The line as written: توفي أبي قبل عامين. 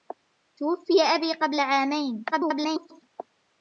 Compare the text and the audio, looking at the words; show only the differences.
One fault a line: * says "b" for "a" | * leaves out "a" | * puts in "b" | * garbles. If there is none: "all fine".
* garbles